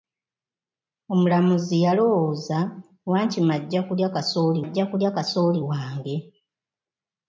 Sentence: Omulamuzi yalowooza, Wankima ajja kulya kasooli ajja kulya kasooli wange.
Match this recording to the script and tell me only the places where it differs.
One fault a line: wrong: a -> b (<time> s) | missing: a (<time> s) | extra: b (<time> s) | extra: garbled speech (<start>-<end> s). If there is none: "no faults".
no faults